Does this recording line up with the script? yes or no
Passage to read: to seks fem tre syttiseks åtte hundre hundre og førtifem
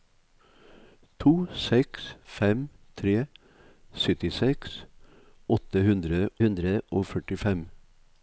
yes